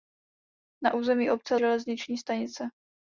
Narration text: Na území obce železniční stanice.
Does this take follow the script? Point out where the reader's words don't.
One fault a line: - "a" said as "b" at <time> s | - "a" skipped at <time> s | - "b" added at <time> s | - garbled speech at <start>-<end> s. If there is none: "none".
none